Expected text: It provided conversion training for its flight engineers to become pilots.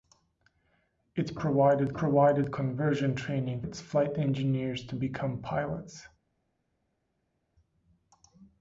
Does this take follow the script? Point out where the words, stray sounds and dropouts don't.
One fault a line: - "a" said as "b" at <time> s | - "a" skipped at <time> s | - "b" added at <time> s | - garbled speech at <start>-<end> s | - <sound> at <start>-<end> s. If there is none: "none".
- "provided" added at 1.9 s
- "for" skipped at 3.6 s